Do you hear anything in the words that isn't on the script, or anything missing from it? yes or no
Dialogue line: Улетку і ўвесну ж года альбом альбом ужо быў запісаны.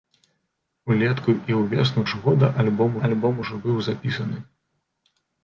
no